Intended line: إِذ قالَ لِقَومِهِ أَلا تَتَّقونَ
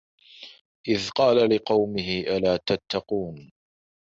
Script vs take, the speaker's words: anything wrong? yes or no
no